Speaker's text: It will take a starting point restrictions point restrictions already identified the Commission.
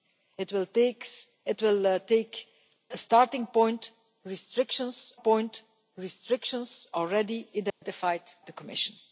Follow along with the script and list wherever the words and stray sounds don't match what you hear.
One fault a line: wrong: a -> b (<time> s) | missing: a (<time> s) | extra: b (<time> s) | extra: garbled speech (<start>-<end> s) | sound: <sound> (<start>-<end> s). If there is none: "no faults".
sound: dropout (7.7-7.8 s)